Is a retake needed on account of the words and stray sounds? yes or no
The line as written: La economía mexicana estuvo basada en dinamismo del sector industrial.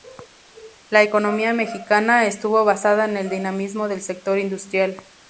yes